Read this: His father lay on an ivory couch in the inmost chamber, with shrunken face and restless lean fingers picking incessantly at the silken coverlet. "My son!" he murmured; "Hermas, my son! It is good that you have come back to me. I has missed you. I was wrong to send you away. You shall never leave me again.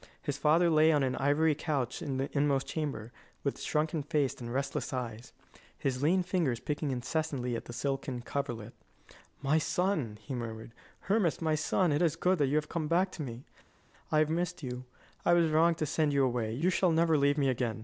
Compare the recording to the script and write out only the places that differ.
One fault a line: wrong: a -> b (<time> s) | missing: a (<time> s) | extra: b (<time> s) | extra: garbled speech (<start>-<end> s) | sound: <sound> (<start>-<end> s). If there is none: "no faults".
extra: eyes his (4.9 s)
wrong: has -> have (14.2 s)